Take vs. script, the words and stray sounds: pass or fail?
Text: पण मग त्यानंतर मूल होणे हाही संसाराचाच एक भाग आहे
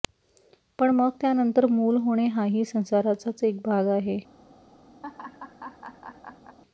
fail